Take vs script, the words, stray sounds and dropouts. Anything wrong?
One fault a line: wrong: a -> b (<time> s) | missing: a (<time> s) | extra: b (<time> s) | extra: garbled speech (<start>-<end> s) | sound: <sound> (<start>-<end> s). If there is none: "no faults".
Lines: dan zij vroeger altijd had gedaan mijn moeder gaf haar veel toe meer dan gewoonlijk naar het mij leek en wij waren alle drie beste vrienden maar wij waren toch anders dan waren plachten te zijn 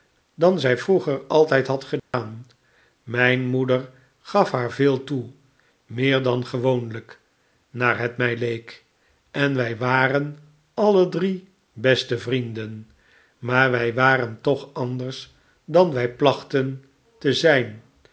sound: dropout (2.0-2.1 s)
wrong: waren -> wij (15.9 s)